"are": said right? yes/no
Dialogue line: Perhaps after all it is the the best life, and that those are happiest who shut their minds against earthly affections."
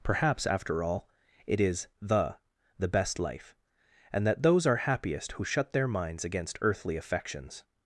yes